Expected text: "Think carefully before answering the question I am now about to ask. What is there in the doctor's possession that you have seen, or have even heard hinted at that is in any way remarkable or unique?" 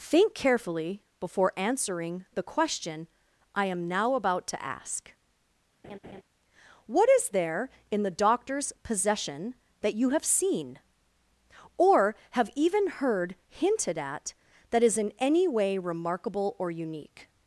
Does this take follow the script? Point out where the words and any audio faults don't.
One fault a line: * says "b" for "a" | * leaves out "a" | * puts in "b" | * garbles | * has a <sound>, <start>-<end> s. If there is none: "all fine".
* has a laugh, 5.8-6.2 s